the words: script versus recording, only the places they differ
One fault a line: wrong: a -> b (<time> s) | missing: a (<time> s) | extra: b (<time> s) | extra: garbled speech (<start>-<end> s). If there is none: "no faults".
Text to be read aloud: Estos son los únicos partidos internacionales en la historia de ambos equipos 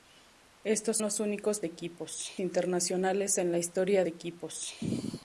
missing: son (1.0 s)
wrong: partidos -> equipos (1.6 s)
missing: de ambos (4.0 s)